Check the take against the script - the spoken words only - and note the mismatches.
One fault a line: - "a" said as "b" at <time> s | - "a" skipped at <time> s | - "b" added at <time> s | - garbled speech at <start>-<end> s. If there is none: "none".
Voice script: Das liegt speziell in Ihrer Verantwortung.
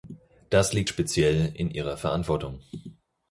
none